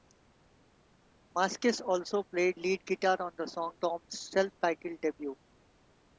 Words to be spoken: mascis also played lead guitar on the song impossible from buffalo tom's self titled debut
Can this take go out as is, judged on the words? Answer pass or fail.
fail